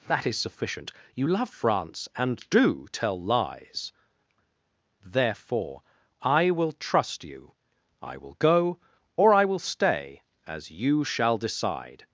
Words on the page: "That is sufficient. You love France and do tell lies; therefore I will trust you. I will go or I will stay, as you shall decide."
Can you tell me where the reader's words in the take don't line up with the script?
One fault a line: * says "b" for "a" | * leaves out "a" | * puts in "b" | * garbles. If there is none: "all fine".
all fine